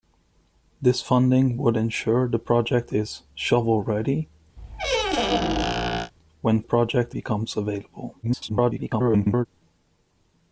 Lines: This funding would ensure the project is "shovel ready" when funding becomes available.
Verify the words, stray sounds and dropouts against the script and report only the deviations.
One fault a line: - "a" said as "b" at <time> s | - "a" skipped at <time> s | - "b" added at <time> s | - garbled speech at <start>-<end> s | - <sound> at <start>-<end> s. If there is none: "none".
- squeak at 4.6-6.1 s
- "funding" said as "project" at 6.6 s
- garbled speech at 8.2-9.5 s